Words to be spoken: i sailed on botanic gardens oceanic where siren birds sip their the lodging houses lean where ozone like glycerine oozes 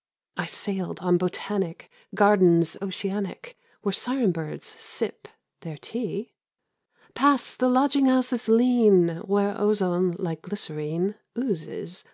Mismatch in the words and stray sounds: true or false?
true